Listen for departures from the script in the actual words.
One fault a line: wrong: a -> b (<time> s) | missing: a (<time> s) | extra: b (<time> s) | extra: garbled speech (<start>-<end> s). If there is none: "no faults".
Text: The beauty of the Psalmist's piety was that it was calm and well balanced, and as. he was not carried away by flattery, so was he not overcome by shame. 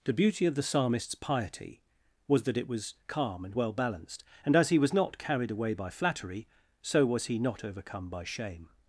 no faults